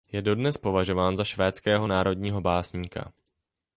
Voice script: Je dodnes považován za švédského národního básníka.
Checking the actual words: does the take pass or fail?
pass